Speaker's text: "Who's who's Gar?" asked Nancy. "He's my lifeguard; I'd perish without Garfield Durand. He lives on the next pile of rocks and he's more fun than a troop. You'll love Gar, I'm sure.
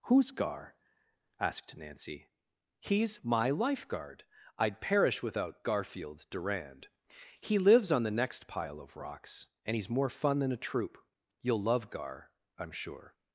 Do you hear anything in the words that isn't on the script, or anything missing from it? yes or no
yes